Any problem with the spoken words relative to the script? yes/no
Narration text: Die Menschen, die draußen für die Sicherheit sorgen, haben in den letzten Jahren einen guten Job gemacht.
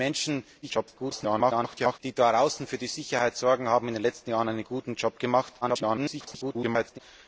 yes